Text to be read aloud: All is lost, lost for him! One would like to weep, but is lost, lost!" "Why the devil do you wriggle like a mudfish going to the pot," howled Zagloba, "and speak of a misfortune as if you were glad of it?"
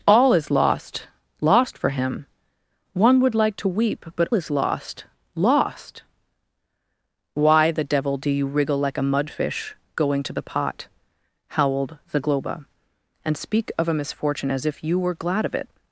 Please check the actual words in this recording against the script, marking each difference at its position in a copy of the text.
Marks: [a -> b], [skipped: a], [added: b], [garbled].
All is lost, lost for him! One would like to weep, but is lost, lost!" "Why the devil do you wriggle like a mudfish going to the pot," howled Zagloba, "and speak of a misfortune as if you were glad of it?"